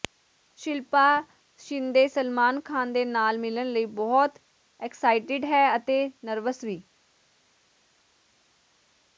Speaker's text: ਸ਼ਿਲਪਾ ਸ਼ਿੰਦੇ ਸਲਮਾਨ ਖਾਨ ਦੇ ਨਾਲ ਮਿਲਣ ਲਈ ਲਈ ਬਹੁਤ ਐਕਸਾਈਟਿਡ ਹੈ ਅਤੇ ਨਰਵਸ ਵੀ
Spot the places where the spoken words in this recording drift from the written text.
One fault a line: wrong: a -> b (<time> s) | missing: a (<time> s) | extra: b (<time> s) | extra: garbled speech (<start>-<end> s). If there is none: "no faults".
missing: ਲਈ (3.9 s)